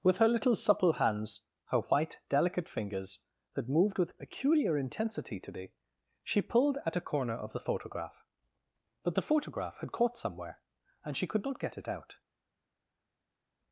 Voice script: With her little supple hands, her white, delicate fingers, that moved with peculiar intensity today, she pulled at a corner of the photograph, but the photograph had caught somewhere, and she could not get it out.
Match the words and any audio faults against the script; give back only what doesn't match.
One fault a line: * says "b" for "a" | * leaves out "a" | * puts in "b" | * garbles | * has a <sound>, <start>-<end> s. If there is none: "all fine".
all fine